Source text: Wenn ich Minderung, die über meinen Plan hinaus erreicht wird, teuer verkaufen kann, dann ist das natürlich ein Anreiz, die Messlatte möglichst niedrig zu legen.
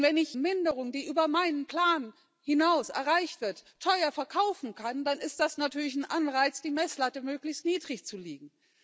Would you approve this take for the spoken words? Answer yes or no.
yes